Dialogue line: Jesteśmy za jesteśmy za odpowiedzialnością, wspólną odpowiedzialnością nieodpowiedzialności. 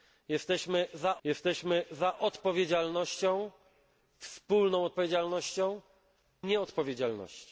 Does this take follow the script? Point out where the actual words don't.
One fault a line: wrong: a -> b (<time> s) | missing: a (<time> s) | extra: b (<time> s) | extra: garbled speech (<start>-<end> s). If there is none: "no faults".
no faults